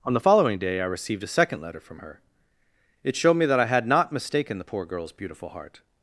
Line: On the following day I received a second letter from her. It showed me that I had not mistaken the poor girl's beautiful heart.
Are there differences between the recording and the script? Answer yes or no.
no